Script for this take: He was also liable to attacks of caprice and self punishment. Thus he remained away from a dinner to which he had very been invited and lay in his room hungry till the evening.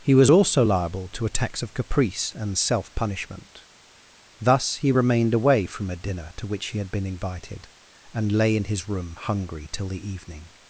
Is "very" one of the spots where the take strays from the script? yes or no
yes